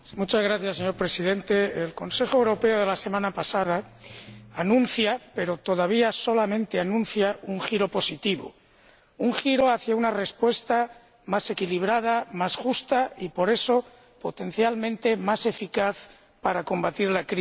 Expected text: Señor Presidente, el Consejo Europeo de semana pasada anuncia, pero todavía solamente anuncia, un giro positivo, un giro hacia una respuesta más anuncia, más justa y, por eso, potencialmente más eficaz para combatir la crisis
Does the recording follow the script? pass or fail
fail